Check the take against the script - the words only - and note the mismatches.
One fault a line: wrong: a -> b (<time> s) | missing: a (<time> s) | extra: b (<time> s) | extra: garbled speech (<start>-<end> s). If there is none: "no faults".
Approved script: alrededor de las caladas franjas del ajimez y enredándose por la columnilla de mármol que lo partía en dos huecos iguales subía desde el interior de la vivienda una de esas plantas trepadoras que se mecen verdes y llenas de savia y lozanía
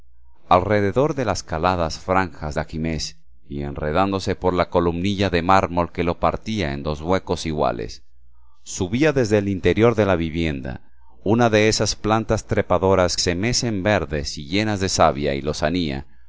missing: del (2.6 s)
missing: que (13.2 s)